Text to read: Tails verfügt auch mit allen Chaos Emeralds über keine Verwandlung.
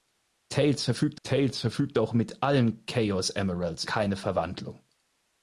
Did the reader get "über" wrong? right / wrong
wrong